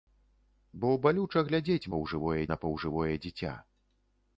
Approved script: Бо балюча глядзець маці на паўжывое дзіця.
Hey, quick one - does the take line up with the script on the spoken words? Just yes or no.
no